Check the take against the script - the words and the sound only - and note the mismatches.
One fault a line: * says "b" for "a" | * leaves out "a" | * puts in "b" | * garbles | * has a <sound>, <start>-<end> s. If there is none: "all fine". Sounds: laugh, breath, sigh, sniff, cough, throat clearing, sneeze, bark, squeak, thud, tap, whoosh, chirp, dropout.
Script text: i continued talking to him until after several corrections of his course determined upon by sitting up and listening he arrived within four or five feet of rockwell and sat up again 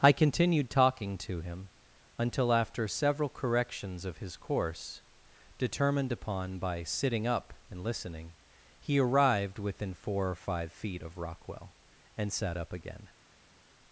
all fine